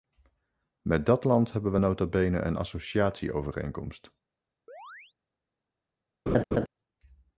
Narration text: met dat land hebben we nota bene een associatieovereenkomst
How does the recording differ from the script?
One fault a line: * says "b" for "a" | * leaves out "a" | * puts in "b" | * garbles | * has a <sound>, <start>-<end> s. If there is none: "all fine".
* has a chirp, 4.7-5.1 s
* has a laugh, 6.3-6.7 s